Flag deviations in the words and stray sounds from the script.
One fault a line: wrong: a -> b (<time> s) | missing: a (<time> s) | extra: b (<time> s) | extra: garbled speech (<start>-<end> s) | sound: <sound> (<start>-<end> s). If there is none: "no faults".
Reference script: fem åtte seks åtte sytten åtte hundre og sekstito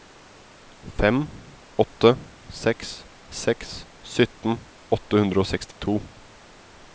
wrong: åtte -> seks (3.4 s)
sound: dropout (5.7-5.8 s)